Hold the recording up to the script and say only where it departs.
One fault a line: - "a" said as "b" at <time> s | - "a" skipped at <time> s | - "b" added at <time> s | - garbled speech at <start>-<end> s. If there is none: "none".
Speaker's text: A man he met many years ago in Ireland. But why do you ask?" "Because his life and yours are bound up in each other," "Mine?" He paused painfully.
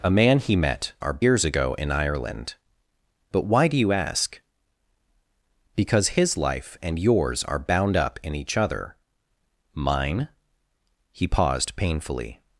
- "many" said as "are" at 1.0 s